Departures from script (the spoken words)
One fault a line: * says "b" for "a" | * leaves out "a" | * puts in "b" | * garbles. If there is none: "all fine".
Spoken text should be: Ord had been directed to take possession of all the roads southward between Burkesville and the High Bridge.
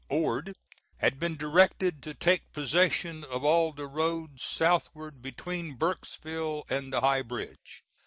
all fine